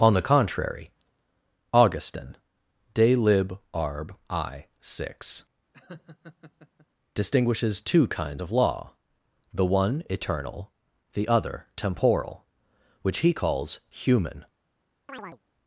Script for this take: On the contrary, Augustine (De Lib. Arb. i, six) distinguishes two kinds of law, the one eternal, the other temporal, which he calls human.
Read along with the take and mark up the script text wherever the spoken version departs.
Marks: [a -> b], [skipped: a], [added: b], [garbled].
On the contrary, Augustine (De Lib. Arb. i, six) distinguishes two kinds of law, the one eternal, the other temporal, which he calls human.